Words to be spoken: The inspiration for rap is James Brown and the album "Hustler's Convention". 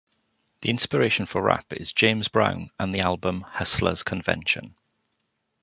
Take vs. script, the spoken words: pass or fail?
pass